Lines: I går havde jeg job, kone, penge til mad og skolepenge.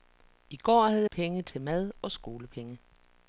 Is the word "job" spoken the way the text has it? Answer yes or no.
no